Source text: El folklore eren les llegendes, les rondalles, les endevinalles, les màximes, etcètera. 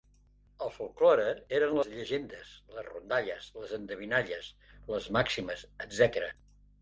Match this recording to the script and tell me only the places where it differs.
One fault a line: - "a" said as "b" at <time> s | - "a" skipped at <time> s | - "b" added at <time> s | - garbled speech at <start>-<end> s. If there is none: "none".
none